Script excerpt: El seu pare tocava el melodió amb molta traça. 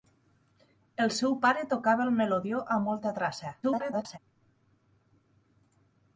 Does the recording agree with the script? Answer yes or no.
no